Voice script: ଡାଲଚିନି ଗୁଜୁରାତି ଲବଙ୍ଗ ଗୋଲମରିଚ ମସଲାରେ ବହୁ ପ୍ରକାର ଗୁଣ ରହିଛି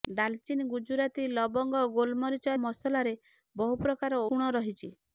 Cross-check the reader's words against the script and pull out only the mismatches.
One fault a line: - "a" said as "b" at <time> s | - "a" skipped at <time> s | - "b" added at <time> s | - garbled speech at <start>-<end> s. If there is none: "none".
none